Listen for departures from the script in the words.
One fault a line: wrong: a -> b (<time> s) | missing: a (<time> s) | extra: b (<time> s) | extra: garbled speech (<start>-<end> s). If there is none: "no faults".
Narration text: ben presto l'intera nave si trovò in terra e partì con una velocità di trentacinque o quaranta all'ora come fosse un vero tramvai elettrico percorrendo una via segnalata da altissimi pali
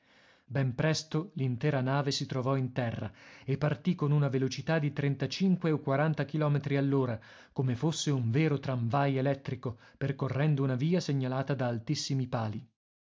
extra: chilometri (6.2 s)